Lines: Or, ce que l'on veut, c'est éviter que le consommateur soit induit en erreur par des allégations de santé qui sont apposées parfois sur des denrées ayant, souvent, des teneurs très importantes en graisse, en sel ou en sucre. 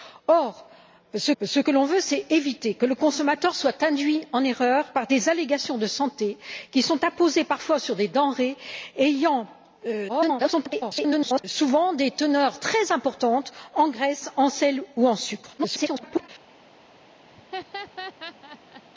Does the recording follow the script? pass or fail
fail